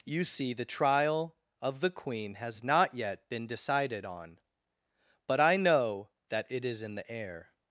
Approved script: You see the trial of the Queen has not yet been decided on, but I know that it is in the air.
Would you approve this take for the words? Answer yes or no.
yes